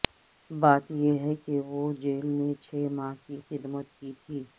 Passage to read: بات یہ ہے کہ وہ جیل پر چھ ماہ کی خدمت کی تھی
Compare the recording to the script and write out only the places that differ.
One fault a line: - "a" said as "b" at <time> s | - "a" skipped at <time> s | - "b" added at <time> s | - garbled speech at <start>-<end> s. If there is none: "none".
- "پر" said as "میں" at 2.3 s